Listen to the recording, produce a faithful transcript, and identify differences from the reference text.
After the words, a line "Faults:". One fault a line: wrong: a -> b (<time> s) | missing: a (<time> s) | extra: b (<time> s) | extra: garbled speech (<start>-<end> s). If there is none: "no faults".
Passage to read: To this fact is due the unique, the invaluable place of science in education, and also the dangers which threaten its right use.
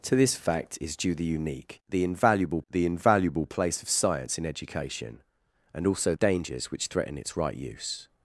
To this fact is due the unique, the invaluable the invaluable place of science in education, and also dangers which threaten its right use.
Faults:
extra: the invaluable (2.7 s)
missing: the (6.1 s)